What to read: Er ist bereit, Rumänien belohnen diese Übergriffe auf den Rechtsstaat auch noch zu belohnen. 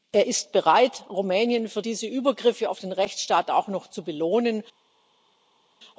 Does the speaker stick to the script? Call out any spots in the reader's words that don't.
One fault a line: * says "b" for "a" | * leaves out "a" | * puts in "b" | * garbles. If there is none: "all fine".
* says "für" for "belohnen"